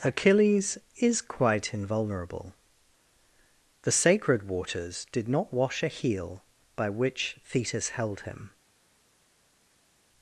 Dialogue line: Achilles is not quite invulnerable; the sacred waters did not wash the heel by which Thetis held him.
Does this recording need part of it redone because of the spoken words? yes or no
yes